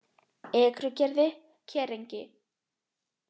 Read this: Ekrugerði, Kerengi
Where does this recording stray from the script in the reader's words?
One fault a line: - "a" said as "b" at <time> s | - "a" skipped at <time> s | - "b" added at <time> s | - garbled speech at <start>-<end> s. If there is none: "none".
none